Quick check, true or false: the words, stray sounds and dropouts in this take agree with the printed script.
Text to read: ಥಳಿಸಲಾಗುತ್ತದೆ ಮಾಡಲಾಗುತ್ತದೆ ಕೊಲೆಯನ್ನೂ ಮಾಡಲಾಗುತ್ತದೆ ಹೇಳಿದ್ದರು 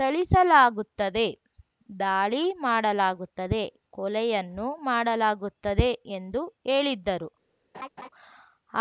false